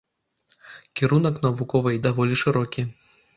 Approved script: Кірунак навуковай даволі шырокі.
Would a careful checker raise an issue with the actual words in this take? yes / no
no